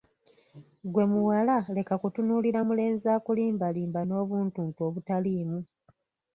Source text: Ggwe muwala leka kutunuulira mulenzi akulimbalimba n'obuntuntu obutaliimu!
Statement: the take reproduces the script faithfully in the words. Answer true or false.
true